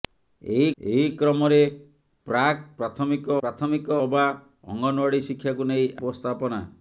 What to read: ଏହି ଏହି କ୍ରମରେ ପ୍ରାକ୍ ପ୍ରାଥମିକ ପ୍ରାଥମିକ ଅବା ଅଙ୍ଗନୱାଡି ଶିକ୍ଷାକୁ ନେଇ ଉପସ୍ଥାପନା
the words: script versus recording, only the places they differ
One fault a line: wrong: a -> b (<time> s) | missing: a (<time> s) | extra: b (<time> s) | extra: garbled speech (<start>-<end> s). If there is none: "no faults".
no faults